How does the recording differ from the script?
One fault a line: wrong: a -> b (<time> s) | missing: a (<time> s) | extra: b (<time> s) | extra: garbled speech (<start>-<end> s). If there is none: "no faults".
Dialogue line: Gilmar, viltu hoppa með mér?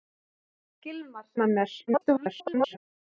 missing: viltu hoppa (1.3 s)
extra: garbled speech (1.9-2.8 s)